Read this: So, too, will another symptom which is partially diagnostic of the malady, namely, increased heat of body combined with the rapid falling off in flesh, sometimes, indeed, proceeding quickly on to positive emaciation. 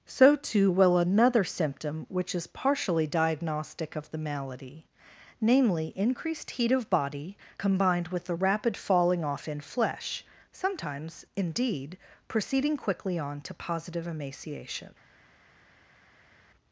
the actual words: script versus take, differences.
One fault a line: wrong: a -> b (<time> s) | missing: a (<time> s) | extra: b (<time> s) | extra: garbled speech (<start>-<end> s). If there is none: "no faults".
no faults